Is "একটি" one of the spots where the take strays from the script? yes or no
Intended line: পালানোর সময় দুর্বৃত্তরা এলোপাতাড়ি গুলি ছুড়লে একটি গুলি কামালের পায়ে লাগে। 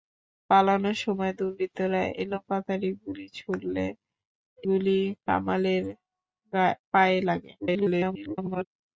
yes